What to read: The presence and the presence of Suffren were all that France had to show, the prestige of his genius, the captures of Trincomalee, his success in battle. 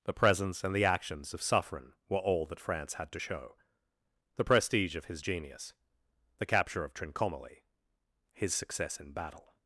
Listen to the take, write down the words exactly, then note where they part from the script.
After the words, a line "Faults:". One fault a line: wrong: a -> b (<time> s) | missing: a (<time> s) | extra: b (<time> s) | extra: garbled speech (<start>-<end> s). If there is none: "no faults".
The presence and the actions of Suffren were all that France had to show, the prestige of his genius, the capture of Trincomalee, his success in battle.
Faults:
wrong: presence -> actions (0.8 s)
wrong: captures -> capture (6.4 s)